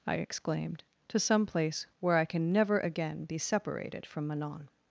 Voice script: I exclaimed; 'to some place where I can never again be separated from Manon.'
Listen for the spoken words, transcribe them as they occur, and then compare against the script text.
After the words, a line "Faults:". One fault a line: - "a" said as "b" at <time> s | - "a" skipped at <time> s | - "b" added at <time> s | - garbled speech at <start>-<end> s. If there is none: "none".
I exclaimed; 'to some place where I can never again be separated from Manon.'
Faults:
none